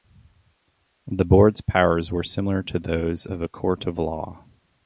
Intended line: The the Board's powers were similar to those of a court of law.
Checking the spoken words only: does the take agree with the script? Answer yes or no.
no